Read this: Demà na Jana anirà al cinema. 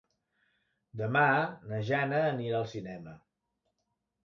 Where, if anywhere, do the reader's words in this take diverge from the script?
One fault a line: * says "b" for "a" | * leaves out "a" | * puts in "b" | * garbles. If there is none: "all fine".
all fine